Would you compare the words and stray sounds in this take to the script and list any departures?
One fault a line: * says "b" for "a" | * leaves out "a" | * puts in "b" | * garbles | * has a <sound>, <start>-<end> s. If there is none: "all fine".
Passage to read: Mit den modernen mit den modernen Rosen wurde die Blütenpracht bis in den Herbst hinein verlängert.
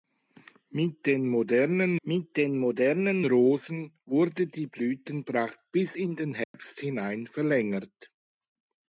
* has a dropout, 6.4-6.5 s